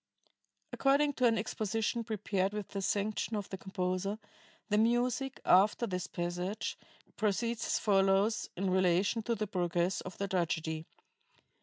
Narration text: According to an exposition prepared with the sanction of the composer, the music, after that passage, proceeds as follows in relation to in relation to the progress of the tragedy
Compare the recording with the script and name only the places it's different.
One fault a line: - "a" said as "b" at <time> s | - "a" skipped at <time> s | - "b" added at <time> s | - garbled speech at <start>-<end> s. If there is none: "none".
- "that" said as "this" at 5.9 s
- "in relation to" skipped at 9.3 s